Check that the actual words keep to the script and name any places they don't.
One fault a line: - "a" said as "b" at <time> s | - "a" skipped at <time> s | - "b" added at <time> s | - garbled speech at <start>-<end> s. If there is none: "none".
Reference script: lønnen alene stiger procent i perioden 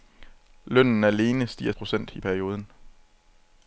none